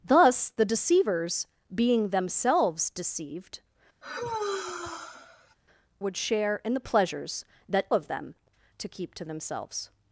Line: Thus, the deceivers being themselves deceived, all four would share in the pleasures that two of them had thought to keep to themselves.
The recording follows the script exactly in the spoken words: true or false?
false